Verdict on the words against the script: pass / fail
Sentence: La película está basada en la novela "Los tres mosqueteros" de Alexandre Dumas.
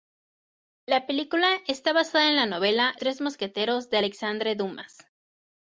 fail